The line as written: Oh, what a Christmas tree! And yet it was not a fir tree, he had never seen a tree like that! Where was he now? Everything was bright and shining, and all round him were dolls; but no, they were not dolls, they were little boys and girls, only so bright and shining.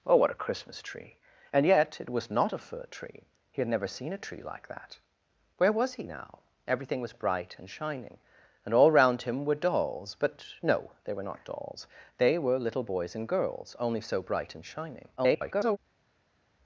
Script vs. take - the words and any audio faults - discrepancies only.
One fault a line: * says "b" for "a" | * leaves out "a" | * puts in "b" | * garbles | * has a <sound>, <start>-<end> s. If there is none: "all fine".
* garbles